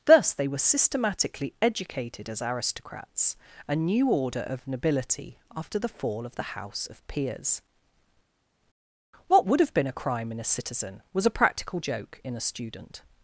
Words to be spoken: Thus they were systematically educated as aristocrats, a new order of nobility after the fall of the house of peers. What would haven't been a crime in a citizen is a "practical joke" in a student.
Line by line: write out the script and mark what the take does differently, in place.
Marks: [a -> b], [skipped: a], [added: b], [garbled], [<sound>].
Thus they were systematically educated as aristocrats, a new order of nobility after the fall of the house of peers. What would [haven't -> have] been a crime in a citizen [is -> was] a "practical joke" in a student.